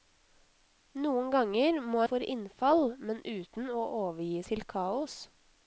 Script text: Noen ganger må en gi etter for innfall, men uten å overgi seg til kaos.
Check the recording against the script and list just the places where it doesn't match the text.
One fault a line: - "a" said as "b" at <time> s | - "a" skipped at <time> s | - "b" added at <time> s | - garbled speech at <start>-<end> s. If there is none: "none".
- "en gi etter" skipped at 2.0 s
- "seg" skipped at 4.4 s